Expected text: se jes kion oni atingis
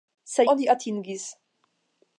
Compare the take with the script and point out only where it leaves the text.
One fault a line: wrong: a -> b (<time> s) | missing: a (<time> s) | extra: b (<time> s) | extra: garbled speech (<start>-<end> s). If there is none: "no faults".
missing: jes kion (0.5 s)